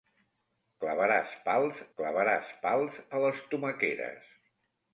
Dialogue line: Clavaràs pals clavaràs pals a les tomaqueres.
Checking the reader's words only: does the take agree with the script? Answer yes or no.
yes